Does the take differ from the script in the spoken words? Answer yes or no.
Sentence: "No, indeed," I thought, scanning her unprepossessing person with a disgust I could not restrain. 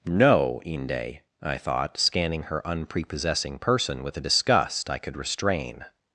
yes